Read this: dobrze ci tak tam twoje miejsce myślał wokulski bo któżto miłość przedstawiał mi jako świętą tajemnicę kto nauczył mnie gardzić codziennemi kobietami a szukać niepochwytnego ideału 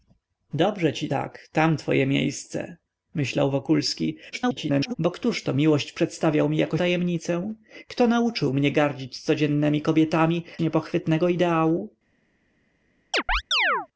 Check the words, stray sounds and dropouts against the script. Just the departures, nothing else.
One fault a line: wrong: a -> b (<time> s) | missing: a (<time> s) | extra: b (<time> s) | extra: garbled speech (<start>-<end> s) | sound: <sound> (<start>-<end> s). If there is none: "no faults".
extra: garbled speech (4.3-4.9 s)
missing: świętą (6.8 s)
missing: a szukać (10.4 s)
sound: chirp (13.1-13.9 s)